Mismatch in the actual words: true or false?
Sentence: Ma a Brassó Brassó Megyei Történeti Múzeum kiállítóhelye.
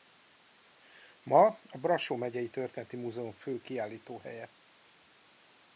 true